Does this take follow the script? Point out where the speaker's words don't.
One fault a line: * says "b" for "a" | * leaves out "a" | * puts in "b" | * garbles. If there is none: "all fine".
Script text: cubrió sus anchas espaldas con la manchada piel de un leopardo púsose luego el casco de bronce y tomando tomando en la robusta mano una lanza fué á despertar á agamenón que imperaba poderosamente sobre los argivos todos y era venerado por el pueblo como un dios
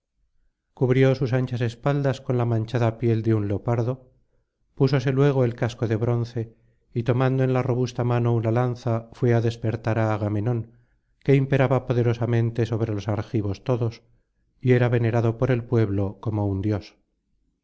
* leaves out "tomando"